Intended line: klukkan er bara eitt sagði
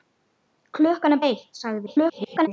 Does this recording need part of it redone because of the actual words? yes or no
yes